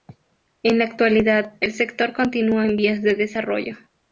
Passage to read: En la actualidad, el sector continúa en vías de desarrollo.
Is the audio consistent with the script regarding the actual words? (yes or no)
yes